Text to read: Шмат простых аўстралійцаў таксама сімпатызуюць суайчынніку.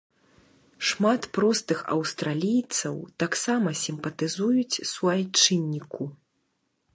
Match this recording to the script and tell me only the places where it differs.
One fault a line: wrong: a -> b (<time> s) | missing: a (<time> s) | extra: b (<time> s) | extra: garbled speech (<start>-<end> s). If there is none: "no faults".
no faults